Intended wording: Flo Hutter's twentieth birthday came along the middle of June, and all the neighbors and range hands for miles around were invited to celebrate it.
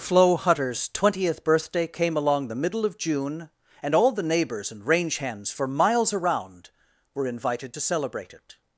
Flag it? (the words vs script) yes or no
no